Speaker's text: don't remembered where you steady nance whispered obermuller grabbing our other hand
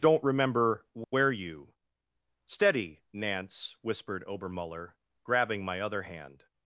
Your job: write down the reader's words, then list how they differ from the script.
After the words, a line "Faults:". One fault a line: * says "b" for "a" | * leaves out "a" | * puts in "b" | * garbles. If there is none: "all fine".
don't remember where you steady nance whispered obermuller grabbing my other hand
Faults:
* says "remember" for "remembered"
* says "my" for "our"